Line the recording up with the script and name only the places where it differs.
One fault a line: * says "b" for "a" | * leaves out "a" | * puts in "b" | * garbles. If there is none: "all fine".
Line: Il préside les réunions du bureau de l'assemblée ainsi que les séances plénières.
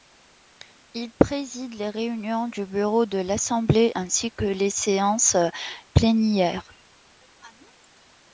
all fine